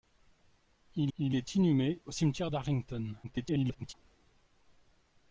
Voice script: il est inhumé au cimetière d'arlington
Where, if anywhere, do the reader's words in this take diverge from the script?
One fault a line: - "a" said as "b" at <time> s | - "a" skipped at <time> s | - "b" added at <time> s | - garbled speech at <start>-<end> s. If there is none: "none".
- "il" added at 1.2 s
- garbled speech at 3.2-3.9 s